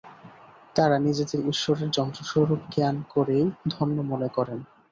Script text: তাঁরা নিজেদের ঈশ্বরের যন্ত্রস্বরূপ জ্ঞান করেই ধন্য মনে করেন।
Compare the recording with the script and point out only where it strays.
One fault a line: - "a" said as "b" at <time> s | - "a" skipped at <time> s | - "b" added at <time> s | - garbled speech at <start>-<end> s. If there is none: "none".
none